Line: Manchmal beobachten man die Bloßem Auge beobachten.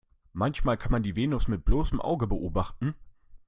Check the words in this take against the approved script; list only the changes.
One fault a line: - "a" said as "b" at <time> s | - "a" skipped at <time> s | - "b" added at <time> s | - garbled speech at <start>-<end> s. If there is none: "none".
- "beobachten" said as "kann" at 0.8 s
- "Venus mit" added at 1.2 s